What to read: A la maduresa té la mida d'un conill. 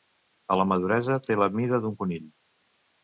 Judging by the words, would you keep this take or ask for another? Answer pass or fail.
pass